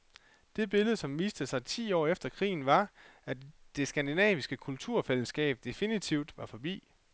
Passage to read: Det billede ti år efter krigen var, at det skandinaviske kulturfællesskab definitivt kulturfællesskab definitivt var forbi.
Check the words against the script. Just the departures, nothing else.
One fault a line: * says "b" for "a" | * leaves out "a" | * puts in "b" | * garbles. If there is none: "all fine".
* puts in "som viste sig"
* leaves out "kulturfællesskab definitivt"